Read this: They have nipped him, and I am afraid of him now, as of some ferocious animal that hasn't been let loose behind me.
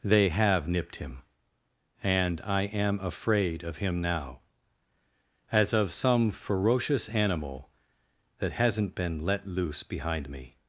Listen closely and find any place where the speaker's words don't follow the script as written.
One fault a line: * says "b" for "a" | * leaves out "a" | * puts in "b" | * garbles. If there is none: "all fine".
all fine